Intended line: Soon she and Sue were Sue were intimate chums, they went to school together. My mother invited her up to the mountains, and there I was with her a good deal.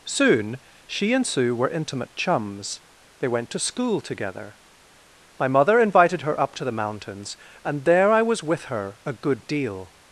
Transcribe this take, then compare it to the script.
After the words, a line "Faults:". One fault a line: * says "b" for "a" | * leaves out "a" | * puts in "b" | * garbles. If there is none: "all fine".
Soon she and Sue were intimate chums, they went to school together. My mother invited her up to the mountains, and there I was with her a good deal.
Faults:
* leaves out "Sue were"